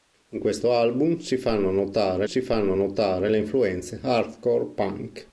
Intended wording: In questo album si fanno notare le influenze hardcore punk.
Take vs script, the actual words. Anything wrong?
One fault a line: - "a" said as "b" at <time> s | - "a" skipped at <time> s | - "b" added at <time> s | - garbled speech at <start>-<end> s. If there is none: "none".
- "si fanno notare" added at 2.2 s